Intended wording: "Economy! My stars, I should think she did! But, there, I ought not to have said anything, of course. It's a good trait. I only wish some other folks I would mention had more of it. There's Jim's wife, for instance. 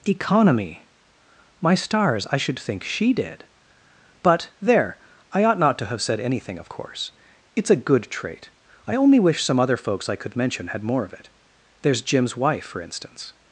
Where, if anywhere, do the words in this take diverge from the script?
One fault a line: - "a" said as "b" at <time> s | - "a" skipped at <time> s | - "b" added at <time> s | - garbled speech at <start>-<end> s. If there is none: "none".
- "would" said as "could" at 10.1 s